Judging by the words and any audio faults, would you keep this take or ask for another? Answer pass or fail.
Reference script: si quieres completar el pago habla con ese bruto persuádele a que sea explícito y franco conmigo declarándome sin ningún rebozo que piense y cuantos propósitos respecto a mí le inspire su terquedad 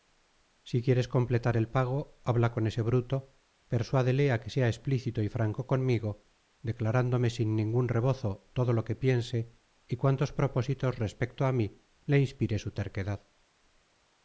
fail